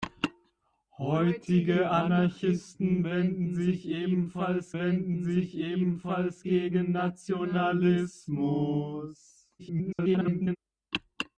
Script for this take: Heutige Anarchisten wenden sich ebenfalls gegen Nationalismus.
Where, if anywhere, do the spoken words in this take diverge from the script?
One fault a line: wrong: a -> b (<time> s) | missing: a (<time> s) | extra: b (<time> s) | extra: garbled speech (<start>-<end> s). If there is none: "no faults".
extra: wenden sich ebenfalls (4.7 s)
extra: garbled speech (9.6-10.6 s)